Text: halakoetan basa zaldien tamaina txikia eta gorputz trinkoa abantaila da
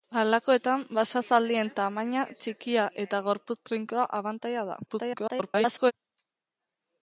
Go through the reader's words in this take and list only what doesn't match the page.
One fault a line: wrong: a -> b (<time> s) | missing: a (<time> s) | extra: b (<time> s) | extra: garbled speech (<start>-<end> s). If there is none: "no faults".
extra: garbled speech (4.9-5.9 s)